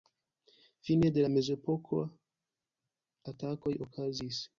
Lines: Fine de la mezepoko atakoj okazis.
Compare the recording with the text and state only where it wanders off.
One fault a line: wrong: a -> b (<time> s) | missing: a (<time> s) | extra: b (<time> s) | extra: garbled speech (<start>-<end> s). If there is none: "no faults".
no faults